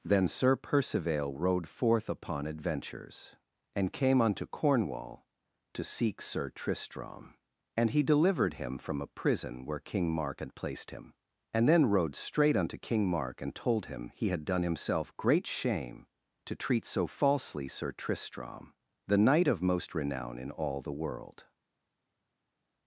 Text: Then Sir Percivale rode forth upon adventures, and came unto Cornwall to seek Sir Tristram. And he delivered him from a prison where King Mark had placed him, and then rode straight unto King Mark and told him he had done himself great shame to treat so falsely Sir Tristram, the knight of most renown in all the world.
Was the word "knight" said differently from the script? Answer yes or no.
no